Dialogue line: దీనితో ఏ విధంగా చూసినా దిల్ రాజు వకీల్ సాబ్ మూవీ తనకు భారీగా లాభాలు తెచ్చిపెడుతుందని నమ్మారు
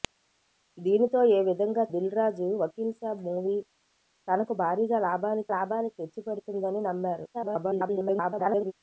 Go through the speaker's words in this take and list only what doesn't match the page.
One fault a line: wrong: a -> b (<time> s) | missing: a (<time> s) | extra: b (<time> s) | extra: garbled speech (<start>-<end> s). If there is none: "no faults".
missing: చూసినా (1.8 s)
extra: లాభాలు (5.5 s)
extra: garbled speech (7.3-8.7 s)